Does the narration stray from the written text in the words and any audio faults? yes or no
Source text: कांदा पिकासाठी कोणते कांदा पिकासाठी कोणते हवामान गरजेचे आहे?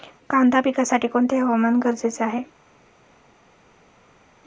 yes